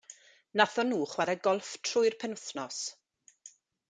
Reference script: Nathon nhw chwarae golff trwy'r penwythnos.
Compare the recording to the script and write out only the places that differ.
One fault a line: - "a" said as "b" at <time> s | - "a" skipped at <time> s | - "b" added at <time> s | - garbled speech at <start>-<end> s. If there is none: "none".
none